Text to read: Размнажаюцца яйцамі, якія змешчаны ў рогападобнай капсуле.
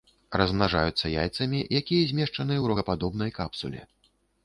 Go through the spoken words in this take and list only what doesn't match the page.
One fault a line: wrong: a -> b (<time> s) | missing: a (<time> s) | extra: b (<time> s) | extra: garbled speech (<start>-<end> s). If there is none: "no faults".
no faults